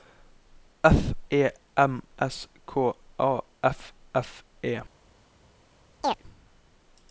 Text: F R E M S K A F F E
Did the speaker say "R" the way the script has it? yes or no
no